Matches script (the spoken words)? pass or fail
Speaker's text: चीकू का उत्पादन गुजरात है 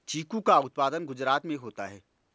fail